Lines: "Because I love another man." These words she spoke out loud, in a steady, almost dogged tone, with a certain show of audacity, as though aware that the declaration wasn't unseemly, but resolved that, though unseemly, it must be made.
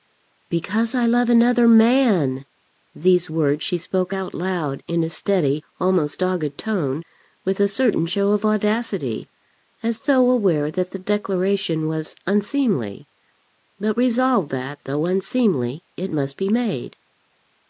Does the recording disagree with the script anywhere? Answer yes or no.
yes